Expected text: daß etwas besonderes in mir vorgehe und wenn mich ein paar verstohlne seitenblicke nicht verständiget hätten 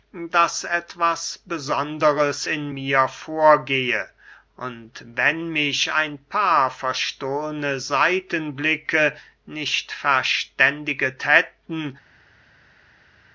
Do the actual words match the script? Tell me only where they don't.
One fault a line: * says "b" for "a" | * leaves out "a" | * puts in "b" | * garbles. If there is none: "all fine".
all fine